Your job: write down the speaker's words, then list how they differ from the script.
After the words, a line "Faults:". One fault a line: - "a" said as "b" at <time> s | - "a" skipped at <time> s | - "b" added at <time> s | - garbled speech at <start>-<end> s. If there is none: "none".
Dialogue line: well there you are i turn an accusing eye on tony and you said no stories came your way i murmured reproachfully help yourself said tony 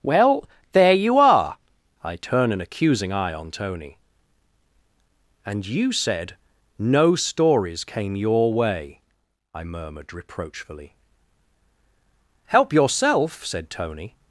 well there you are i turn an accusing eye on tony and you said no stories came your way i murmured reproachfully help yourself said tony
Faults:
none